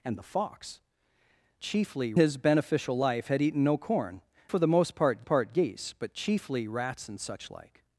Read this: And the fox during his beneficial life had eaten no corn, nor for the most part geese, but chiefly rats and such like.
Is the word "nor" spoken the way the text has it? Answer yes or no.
no